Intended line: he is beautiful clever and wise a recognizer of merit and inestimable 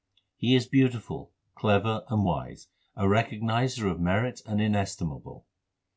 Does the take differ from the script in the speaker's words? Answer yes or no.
no